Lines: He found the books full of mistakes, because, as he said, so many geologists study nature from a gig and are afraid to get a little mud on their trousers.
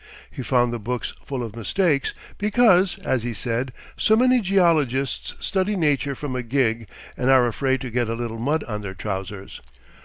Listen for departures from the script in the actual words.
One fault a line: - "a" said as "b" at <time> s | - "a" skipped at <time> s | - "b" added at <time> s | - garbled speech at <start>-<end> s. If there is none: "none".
none